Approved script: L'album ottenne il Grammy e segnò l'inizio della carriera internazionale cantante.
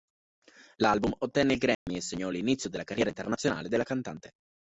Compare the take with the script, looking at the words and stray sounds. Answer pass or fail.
fail